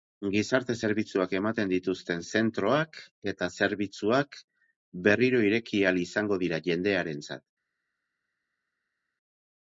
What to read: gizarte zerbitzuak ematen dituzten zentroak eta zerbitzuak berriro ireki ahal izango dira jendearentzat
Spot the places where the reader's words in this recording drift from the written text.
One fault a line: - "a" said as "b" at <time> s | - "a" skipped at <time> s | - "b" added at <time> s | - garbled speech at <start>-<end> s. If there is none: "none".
none